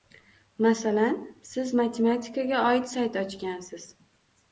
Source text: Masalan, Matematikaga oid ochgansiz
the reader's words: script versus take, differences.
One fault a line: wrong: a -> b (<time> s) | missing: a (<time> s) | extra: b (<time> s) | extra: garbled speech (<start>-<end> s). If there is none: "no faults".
extra: Siz (1.5 s)
extra: sayt (2.9 s)